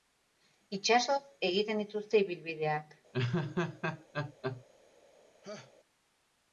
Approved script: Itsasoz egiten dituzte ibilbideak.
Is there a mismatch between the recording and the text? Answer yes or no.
no